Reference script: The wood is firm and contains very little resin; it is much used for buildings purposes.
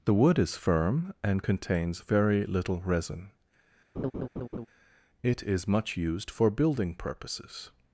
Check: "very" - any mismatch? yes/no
no